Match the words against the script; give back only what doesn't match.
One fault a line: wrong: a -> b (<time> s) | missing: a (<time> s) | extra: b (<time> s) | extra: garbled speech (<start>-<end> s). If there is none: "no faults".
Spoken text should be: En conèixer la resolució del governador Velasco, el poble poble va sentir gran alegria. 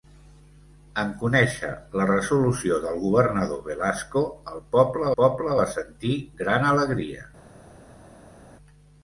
no faults